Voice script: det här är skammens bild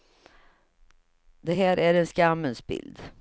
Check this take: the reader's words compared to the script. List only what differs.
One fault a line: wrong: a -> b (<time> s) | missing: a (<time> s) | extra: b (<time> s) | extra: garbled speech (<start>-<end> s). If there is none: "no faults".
extra: en (1.9 s)